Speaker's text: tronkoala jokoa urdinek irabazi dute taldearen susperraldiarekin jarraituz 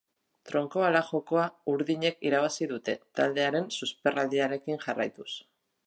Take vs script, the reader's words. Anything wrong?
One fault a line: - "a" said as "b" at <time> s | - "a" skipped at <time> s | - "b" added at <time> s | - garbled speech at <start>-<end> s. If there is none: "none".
none